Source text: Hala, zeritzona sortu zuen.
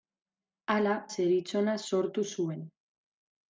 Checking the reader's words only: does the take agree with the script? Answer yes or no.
yes